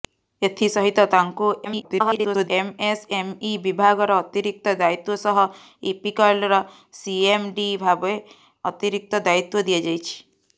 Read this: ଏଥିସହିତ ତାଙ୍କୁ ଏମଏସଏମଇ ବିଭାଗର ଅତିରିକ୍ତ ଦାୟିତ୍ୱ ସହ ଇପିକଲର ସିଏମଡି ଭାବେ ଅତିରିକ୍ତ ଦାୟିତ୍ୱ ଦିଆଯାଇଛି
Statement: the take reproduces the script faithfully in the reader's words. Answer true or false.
false